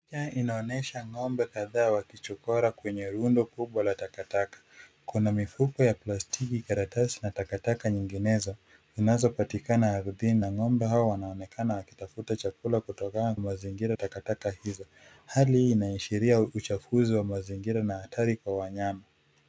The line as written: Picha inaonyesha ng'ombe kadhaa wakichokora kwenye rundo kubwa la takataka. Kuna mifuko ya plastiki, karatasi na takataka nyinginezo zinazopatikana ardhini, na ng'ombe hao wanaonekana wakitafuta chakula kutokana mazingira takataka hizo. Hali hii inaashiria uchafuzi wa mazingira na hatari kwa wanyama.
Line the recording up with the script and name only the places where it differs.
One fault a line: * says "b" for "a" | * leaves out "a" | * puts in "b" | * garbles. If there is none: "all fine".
all fine